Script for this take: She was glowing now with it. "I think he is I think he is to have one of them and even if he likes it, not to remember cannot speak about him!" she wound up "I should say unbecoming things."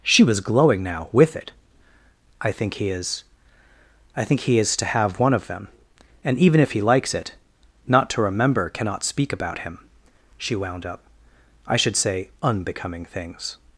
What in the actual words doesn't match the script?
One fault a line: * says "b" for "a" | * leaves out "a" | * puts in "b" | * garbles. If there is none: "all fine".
all fine